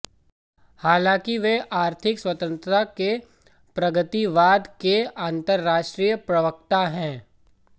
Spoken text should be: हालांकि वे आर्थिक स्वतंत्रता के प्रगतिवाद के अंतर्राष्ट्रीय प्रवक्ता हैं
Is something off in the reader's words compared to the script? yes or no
no